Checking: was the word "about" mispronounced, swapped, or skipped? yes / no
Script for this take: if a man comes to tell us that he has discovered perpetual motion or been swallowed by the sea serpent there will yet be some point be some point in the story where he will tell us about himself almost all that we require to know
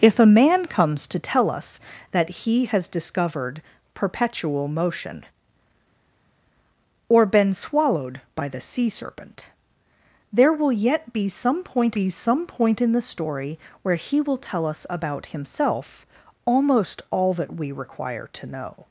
no